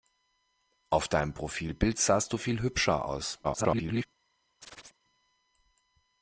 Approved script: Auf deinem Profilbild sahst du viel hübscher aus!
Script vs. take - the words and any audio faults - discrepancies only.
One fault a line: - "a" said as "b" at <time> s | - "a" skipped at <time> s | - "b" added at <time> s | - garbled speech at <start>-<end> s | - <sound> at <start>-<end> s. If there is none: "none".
- garbled speech at 3.4-4.1 s
- chirp at 4.6-5.0 s